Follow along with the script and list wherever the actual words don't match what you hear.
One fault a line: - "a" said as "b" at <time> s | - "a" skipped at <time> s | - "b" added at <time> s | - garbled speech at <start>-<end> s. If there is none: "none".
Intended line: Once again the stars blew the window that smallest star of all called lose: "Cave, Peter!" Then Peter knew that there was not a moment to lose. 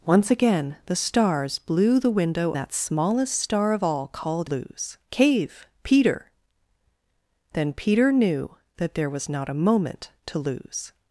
none